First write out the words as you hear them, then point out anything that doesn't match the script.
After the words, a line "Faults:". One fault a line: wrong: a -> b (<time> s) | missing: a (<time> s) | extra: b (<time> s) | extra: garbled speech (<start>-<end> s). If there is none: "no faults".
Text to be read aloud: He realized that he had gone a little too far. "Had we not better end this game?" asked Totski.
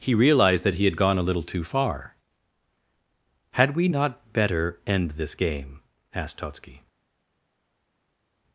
He realized that he had gone a little too far. "Had we not better end this game?" asked Totski.
Faults:
no faults